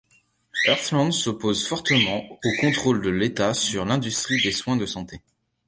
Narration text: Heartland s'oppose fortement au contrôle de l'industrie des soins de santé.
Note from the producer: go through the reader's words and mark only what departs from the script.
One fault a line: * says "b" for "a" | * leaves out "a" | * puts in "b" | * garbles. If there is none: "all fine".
* puts in "l'État sur"